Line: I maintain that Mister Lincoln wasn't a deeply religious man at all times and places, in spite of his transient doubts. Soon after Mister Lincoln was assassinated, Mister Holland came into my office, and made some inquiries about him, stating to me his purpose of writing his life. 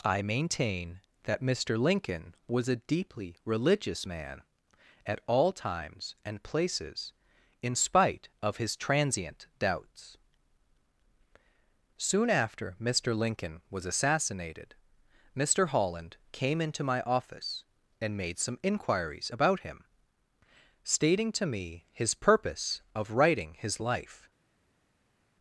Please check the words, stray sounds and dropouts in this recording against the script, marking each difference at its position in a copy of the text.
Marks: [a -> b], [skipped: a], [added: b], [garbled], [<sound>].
I maintain that Mister Lincoln [wasn't -> was] a deeply religious man at all times and places, in spite of his transient doubts. Soon after Mister Lincoln was assassinated, Mister Holland came into my office, and made some inquiries about him, stating to me his purpose of writing his life.